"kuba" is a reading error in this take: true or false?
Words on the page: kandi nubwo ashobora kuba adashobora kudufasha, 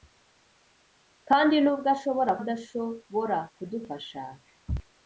true